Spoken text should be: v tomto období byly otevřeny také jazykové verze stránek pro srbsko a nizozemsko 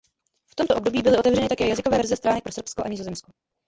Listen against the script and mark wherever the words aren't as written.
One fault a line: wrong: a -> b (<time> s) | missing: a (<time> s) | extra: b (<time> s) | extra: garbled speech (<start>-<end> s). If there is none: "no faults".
no faults